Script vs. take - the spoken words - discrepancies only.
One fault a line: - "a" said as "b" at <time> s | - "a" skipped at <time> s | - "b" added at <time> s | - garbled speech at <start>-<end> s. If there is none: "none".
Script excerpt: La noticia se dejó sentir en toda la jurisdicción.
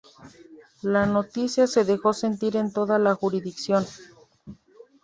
none